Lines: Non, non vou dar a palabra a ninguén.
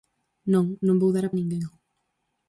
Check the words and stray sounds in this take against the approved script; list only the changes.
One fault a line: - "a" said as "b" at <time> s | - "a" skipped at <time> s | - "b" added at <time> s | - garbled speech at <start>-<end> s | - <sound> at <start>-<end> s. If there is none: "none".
- "palabra" skipped at 1.3 s